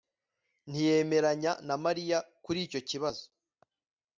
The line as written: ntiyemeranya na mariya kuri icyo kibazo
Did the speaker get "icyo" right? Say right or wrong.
right